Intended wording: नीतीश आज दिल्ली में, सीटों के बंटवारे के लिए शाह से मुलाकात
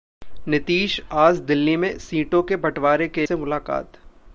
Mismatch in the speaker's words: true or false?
true